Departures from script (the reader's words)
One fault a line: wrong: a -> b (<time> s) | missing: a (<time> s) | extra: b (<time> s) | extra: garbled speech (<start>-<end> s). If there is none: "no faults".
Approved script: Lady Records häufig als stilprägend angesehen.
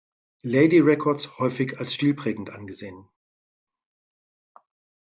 no faults